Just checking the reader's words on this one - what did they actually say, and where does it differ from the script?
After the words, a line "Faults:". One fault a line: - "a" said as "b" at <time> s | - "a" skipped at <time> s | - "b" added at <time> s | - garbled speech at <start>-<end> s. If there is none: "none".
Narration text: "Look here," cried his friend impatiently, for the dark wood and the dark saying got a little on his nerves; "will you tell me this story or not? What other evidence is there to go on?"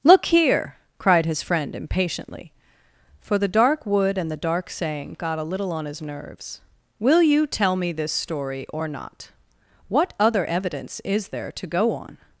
"Look here," cried his friend impatiently, for the dark wood and the dark saying got a little on his nerves; "will you tell me this story or not? What other evidence is there to go on?"
Faults:
none